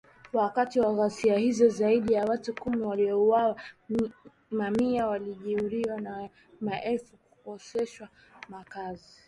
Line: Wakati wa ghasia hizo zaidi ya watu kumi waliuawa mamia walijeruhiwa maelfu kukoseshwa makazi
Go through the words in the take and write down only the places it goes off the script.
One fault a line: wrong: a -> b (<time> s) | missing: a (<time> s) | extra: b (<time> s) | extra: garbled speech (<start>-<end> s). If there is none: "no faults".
extra: na (6.0 s)